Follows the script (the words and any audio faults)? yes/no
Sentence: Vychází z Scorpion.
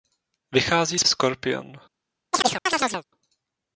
no